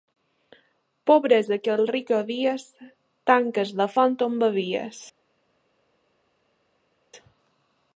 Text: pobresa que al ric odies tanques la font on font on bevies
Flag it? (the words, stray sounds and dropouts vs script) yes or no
yes